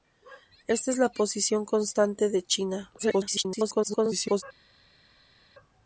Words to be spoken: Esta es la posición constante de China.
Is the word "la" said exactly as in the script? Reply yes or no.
yes